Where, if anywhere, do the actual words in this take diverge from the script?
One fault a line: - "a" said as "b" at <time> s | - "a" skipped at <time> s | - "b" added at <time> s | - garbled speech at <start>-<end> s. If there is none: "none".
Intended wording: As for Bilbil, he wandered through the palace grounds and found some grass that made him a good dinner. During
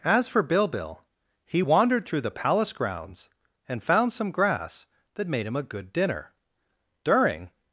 none